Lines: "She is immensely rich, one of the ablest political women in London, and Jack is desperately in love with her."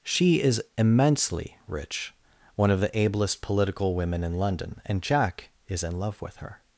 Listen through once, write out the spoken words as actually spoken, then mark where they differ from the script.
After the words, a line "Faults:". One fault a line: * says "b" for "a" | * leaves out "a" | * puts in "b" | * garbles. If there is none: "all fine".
"She is immensely rich, one of the ablest political women in London, and Jack is in love with her."
Faults:
* leaves out "desperately"